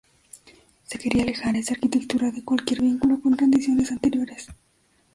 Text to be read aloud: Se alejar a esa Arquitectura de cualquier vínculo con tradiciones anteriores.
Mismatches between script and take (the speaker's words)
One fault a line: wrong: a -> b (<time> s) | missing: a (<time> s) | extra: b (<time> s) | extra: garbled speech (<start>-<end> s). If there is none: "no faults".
extra: quería (1.0 s)